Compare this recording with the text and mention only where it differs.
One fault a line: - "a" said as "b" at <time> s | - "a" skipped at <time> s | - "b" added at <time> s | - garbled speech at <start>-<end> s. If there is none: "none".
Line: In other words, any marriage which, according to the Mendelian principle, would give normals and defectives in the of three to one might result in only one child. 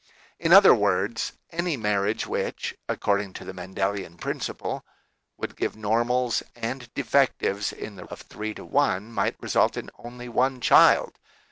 none